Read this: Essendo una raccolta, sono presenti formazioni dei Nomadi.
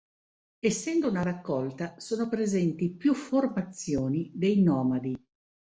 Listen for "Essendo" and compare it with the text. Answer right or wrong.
right